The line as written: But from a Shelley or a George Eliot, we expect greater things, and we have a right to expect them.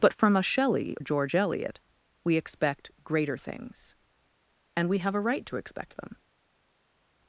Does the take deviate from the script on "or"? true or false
true